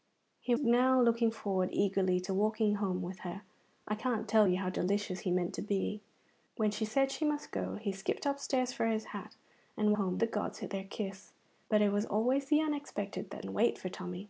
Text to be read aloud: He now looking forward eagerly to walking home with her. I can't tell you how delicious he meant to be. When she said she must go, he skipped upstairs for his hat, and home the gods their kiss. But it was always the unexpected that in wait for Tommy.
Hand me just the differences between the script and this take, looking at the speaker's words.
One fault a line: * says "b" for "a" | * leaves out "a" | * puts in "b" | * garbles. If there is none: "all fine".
all fine